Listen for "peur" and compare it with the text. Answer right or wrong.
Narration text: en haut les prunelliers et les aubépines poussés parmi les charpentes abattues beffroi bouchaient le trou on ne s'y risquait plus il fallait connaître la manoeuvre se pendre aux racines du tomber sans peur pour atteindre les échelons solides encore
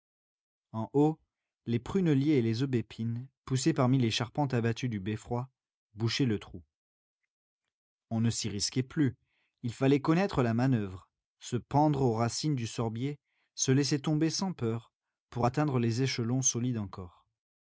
right